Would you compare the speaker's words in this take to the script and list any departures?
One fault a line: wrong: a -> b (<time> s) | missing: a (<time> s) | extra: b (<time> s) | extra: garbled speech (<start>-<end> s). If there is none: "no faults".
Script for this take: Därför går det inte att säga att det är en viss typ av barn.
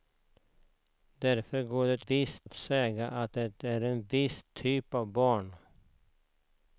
wrong: inte -> viss (2.0 s)